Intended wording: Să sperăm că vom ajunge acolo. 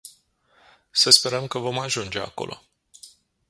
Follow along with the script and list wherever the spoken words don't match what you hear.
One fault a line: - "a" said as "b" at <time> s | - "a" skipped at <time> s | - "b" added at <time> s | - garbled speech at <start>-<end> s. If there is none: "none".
none